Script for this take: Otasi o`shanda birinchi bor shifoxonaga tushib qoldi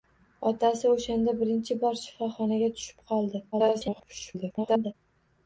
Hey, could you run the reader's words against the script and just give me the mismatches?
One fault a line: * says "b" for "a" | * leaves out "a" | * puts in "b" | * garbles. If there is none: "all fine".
* garbles